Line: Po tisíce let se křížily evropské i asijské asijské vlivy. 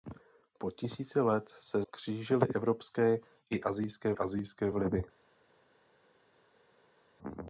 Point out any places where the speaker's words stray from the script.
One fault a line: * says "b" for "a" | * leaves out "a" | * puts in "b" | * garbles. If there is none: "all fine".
all fine